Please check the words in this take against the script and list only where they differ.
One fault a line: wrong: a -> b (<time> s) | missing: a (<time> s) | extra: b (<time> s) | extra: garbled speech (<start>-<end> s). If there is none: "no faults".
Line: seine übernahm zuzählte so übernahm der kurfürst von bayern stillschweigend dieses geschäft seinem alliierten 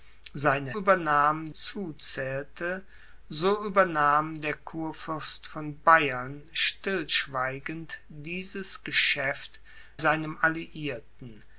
no faults